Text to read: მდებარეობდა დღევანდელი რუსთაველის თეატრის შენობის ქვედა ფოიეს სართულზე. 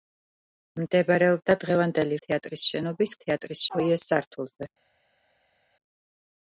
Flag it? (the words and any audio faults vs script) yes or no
yes